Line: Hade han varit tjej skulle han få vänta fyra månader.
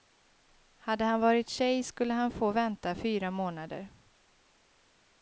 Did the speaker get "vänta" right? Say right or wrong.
right